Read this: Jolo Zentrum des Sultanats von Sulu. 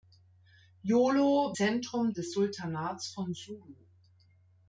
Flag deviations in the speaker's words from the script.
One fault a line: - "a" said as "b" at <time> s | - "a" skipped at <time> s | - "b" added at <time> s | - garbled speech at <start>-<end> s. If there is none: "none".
none